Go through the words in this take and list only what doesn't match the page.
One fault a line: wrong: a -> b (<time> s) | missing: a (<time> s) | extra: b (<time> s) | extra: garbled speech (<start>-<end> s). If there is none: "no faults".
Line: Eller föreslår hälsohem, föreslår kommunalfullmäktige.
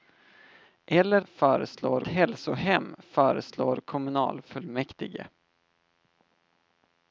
no faults